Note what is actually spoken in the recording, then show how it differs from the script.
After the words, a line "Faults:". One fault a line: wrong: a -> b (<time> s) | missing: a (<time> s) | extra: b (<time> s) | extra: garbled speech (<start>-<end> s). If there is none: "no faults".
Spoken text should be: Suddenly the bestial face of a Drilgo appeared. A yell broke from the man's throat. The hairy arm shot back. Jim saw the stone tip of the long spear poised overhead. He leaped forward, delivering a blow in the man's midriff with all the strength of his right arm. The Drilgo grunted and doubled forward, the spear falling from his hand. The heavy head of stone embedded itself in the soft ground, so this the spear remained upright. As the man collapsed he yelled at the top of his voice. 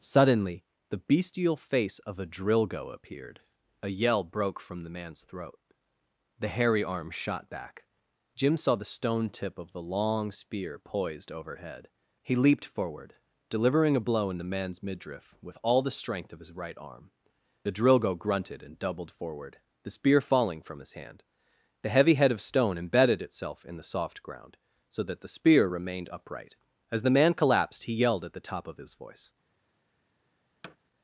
Suddenly the bestial face of a Drilgo appeared. A yell broke from the man's throat. The hairy arm shot back. Jim saw the stone tip of the long spear poised overhead. He leaped forward, delivering a blow in the man's midriff with all the strength of his right arm. The Drilgo grunted and doubled forward, the spear falling from his hand. The heavy head of stone embedded itself in the soft ground, so that the spear remained upright. As the man collapsed he yelled at the top of his voice.
Faults:
wrong: this -> that (25.0 s)